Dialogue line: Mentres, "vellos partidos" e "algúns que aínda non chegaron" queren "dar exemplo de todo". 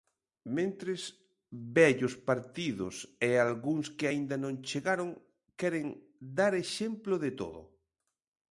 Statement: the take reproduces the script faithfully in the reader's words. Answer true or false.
true